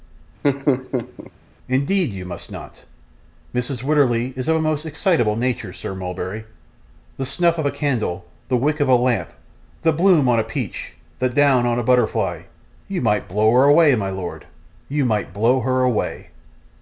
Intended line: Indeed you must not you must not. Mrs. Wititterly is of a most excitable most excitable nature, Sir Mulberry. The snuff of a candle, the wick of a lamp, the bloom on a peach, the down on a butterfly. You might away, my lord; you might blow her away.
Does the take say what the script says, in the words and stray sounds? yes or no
no